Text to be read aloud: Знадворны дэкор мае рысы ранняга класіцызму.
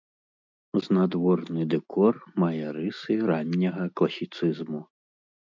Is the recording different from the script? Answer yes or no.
no